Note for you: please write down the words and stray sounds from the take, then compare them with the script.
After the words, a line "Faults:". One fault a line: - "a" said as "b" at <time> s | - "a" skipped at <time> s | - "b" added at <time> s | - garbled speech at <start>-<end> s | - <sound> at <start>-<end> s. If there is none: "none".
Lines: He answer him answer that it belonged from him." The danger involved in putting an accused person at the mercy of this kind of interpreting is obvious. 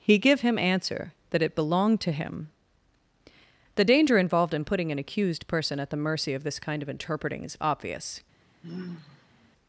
He give him answer that it belonged to him." The danger involved in putting an accused person at the mercy of this kind of interpreting is obvious.
Faults:
- "answer" said as "give" at 0.2 s
- "from" said as "to" at 2.0 s
- sigh at 8.6-9.5 s